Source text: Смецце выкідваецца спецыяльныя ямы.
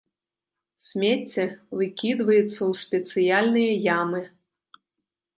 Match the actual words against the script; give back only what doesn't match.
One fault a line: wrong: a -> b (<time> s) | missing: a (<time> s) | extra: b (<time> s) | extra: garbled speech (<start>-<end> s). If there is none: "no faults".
extra: ў (2.6 s)